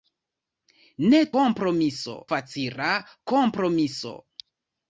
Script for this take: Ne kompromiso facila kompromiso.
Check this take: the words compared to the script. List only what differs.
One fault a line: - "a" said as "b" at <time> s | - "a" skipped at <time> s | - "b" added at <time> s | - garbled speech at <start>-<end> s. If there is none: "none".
none